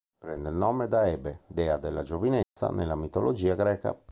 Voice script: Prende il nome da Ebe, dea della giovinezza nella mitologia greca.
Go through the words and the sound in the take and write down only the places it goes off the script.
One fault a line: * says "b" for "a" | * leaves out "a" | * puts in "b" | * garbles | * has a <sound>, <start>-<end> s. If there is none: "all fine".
* has a dropout, 2.4-2.6 s